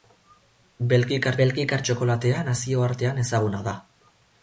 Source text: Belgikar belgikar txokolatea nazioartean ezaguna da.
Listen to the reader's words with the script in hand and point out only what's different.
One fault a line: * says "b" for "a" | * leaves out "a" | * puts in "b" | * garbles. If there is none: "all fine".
all fine